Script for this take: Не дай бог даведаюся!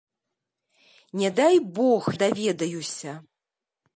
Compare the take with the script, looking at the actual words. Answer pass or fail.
pass